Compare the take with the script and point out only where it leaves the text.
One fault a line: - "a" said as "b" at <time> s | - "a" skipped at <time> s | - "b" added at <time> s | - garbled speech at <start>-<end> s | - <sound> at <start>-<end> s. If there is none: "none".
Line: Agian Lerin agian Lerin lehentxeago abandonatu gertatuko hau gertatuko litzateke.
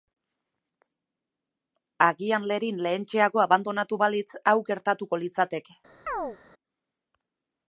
- "agian Lerin" skipped at 2.8 s
- "gertatuko" said as "balitz" at 4.0 s
- chirp at 6.1-6.4 s